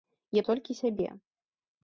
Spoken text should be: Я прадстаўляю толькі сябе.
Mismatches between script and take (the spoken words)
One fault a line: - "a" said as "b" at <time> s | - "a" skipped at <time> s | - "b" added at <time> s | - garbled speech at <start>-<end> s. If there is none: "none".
- "прадстаўляю" skipped at 0.4 s